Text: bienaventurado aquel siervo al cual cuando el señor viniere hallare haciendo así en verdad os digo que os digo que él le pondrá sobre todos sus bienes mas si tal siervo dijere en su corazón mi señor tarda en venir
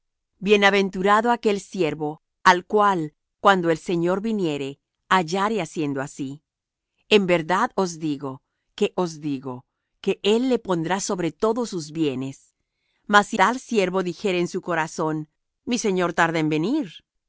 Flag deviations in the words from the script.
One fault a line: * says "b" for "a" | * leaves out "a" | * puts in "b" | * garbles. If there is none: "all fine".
all fine